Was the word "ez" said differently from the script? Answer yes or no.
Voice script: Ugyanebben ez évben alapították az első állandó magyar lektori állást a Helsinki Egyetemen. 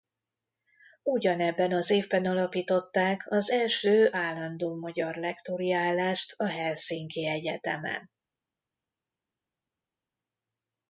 yes